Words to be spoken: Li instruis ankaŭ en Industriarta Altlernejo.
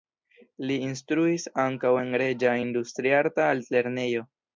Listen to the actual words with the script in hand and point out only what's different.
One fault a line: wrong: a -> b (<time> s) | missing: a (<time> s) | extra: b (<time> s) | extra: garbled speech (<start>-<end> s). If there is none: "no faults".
extra: Reĝa (2.2 s)